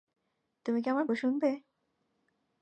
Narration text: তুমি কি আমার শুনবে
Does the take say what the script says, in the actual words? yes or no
yes